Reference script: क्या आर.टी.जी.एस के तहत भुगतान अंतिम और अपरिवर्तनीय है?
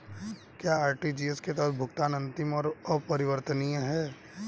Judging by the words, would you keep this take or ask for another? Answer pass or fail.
pass